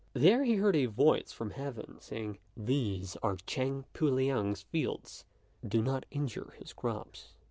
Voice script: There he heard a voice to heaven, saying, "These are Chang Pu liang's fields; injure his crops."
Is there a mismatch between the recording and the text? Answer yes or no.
yes